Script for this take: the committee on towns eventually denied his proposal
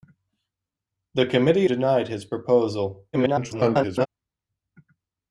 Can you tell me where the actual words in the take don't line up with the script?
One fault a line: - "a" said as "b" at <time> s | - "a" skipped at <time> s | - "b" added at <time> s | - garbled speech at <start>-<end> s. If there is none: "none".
- "on towns eventually" skipped at 1.7 s
- garbled speech at 3.1-4.1 s